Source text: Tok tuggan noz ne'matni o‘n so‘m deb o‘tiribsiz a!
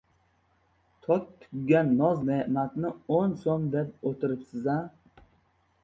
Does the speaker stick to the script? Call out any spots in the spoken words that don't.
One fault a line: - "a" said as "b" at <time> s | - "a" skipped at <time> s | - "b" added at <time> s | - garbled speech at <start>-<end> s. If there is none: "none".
none